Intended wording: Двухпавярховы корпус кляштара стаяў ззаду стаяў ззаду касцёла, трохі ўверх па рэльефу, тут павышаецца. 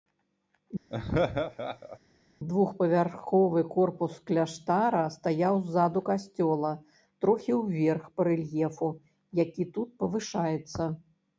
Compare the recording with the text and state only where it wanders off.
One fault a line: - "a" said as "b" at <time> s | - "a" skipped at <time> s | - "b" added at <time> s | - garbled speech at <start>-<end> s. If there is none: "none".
- "стаяў ззаду" skipped at 6.0 s
- "які" added at 9.4 s